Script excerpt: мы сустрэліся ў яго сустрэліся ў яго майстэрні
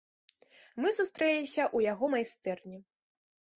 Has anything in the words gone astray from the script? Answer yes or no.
yes